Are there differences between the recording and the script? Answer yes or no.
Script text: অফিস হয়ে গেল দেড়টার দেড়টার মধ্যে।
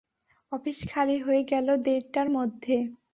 yes